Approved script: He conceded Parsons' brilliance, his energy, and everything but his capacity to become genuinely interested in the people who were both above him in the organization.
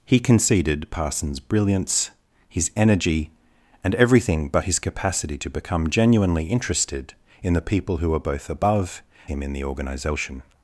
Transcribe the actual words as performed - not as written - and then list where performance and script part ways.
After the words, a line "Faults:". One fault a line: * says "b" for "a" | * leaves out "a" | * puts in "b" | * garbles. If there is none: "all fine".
He conceded Parsons' brilliance, his energy, and everything but his capacity to become genuinely interested in the people who were both above him in the organization.
Faults:
all fine